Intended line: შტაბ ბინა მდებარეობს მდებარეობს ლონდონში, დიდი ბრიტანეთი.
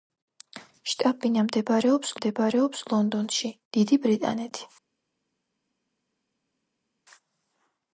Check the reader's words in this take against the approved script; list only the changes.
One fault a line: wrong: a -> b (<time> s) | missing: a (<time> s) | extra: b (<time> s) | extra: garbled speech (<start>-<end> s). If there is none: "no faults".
no faults